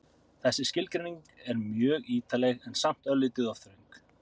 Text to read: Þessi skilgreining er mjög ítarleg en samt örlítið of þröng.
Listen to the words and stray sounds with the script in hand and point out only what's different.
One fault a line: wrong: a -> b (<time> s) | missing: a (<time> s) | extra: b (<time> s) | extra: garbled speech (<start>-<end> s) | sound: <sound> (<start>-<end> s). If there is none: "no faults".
no faults